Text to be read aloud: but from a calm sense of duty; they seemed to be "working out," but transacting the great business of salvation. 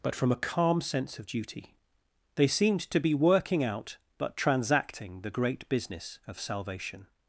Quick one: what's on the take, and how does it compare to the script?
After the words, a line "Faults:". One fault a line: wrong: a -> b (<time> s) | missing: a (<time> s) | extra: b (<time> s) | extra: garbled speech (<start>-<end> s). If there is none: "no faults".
but from a calm sense of duty; they seemed to be "working out," but transacting the great business of salvation.
Faults:
no faults